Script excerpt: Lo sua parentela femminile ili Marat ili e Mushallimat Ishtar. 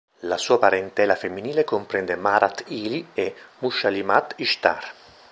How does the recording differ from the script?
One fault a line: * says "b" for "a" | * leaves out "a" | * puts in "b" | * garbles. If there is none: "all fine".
* says "La" for "Lo"
* says "comprende" for "ili"